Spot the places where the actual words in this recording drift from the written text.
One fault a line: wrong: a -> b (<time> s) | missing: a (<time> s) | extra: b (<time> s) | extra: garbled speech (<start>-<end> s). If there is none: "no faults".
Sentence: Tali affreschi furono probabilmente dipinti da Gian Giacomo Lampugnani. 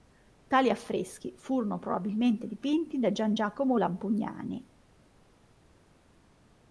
no faults